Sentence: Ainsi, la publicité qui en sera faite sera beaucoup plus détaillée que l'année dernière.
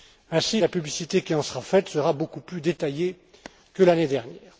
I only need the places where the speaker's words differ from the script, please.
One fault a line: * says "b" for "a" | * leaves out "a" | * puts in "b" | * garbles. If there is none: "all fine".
all fine